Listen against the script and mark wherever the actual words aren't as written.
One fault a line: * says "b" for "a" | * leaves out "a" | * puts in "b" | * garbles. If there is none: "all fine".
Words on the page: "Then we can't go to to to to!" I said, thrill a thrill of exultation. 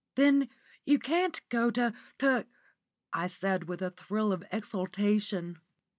* says "you" for "we"
* leaves out "to to"
* says "with" for "thrill"